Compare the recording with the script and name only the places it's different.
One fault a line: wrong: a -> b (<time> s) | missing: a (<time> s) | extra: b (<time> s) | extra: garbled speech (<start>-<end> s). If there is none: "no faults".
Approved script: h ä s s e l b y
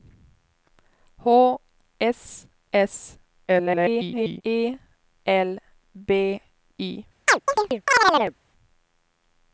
missing: ä (1.3 s)
extra: garbled speech (3.5-4.4 s)